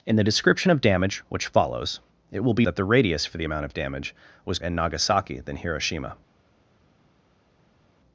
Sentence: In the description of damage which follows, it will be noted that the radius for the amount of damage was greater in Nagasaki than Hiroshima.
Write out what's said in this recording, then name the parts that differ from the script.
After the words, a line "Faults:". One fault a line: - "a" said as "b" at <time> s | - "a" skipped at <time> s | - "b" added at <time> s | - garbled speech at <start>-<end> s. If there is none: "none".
In the description of damage which follows, it will be that the radius for the amount of damage was in Nagasaki than Hiroshima.
Faults:
- "noted" skipped at 2.6 s
- "greater" skipped at 4.6 s